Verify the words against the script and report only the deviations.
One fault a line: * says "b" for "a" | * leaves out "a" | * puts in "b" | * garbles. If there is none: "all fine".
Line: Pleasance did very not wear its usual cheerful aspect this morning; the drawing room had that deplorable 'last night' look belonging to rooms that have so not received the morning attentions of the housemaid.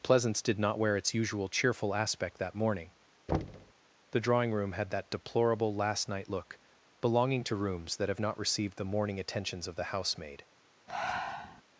* leaves out "very"
* says "that" for "this"
* leaves out "so"